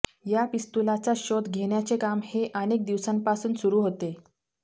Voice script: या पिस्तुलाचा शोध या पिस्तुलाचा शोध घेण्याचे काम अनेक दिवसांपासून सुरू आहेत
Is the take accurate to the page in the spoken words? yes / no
no